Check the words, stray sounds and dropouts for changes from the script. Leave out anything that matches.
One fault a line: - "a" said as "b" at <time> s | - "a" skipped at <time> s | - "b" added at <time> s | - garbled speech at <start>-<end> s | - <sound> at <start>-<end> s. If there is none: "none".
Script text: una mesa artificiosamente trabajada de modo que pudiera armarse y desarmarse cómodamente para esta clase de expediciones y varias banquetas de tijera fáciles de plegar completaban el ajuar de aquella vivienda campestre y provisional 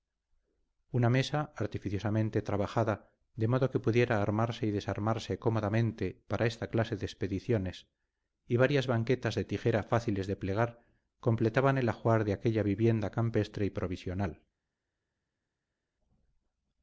none